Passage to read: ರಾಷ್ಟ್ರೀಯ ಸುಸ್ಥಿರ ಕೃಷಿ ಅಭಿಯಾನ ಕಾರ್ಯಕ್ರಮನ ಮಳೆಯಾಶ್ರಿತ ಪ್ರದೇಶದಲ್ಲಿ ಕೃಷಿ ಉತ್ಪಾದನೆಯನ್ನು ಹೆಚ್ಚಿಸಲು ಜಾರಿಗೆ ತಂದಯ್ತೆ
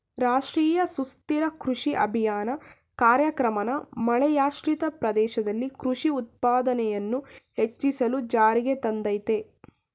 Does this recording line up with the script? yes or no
yes